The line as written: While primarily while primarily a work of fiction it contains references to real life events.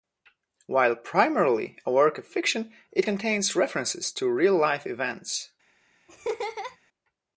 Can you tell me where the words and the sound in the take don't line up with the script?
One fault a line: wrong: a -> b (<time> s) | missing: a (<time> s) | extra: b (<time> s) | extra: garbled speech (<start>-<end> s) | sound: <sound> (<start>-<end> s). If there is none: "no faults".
missing: while primarily (1.8 s)
sound: laugh (6.1-6.8 s)